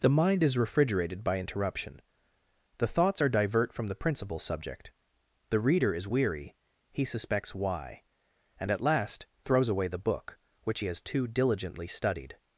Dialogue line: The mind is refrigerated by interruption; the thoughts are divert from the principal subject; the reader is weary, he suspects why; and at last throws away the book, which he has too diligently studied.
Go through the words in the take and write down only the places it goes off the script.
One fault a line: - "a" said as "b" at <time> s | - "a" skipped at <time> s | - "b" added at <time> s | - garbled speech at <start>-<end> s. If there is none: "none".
none